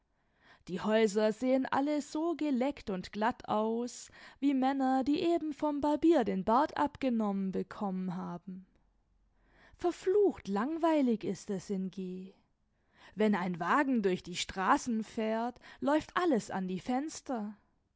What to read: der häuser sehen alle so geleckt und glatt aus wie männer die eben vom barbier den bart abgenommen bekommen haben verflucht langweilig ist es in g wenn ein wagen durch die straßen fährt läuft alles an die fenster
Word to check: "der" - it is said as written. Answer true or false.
false